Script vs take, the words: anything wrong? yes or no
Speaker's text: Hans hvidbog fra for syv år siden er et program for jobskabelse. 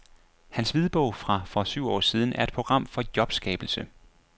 no